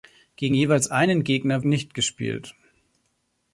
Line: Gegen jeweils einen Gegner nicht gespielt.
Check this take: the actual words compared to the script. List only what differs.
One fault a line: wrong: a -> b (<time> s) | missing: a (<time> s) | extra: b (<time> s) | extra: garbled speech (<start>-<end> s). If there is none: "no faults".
no faults